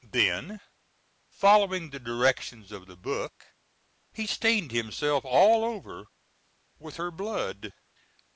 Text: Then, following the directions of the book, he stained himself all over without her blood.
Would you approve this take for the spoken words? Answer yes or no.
no